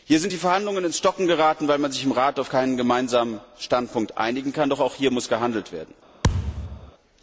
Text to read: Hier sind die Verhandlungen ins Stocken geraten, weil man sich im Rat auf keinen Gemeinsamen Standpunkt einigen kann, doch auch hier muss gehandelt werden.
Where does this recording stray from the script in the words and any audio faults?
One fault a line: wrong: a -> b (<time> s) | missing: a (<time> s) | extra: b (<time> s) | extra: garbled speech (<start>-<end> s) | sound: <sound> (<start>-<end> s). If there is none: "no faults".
sound: thud (6.2-6.9 s)